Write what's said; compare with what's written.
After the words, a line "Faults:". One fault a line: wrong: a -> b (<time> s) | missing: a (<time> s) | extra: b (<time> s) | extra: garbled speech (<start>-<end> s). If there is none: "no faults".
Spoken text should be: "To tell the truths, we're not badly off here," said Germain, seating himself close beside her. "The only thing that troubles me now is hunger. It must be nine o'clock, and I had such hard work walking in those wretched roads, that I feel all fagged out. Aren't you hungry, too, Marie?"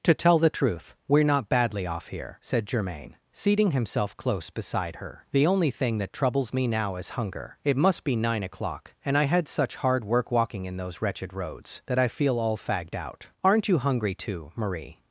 "To tell the truth, we're not badly off here," said Germain, seating himself close beside her. "The only thing that troubles me now is hunger. It must be nine o'clock, and I had such hard work walking in those wretched roads, that I feel all fagged out. Aren't you hungry, too, Marie?"
Faults:
wrong: truths -> truth (0.5 s)